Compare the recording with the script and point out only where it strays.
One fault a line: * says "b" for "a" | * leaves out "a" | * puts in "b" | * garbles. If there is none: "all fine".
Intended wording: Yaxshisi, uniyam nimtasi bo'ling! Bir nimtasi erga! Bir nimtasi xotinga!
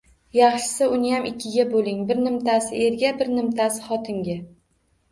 * says "ikkiga" for "nimtasi"